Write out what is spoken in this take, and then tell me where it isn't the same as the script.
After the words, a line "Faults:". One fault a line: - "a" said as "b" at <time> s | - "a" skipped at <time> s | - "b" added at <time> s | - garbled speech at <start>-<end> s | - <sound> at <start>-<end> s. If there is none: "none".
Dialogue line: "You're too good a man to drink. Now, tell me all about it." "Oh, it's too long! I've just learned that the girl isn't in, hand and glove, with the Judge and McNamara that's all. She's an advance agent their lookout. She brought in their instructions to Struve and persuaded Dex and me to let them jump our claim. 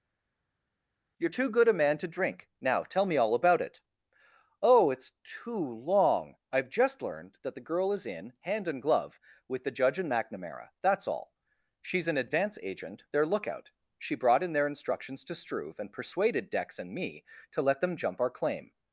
"You're too good a man to drink. Now, tell me all about it." "Oh, it's too long! I've just learned that the girl is in, hand and glove, with the Judge and McNamara that's all. She's an advance agent their lookout. She brought in their instructions to Struve and persuaded Dex and me to let them jump our claim.
Faults:
- "isn't" said as "is" at 7.9 s